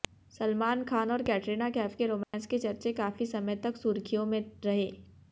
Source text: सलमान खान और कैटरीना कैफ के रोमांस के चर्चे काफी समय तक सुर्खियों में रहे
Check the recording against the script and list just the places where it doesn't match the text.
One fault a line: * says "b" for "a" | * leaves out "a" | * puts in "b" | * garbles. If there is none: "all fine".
all fine